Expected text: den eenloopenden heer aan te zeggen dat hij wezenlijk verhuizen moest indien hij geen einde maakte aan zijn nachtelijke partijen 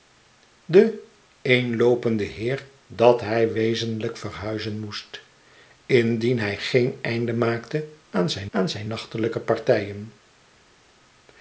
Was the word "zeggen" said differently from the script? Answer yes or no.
yes